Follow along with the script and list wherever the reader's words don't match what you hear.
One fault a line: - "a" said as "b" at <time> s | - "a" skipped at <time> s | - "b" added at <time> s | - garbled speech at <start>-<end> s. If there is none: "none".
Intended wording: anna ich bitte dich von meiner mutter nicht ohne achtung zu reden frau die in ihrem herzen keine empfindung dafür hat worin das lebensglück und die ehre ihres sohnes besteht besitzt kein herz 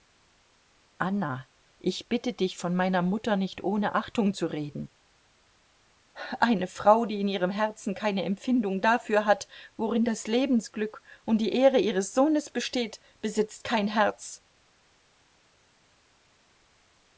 - "eine" added at 6.4 s